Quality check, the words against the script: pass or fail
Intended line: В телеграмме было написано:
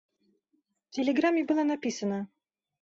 pass